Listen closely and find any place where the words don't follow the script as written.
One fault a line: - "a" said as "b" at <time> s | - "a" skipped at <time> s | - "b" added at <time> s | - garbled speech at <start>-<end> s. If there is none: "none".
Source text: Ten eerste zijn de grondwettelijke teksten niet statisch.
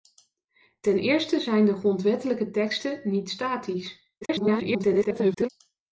- garbled speech at 4.2-5.5 s